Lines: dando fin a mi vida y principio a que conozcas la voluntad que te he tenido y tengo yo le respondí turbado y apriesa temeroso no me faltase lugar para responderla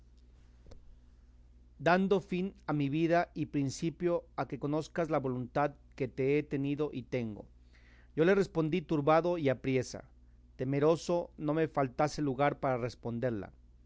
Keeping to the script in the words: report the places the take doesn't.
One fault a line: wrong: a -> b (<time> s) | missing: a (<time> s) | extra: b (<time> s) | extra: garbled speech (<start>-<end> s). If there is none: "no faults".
no faults